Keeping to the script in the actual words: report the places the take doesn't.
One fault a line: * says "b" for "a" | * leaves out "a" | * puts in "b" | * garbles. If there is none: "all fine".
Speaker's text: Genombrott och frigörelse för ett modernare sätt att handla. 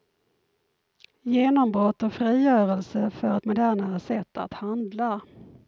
all fine